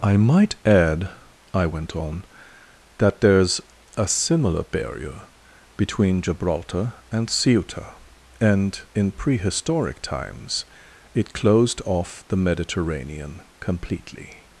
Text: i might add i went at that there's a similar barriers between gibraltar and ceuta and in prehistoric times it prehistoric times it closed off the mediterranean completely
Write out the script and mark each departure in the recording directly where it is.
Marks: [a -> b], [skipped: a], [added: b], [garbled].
i might add i went [at -> on] that there's a similar [barriers -> barrier] between gibraltar and ceuta and in prehistoric times it [skipped: prehistoric times it] closed off the mediterranean completely